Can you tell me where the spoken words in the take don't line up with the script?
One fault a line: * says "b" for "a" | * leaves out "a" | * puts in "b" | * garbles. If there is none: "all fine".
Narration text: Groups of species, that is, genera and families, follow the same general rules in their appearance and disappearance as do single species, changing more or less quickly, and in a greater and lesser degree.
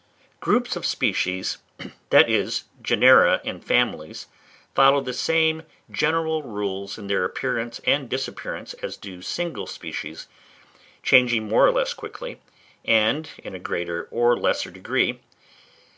* says "or" for "and"